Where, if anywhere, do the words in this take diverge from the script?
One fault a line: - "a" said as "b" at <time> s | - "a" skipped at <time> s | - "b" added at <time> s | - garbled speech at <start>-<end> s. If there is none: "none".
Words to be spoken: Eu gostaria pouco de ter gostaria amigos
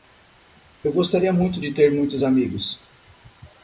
- "pouco" said as "muito" at 1.3 s
- "gostaria" said as "muitos" at 1.9 s